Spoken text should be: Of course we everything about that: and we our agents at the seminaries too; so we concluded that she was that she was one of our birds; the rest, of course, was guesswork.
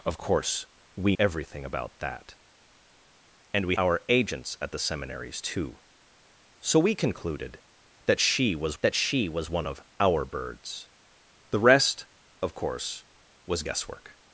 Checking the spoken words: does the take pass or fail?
pass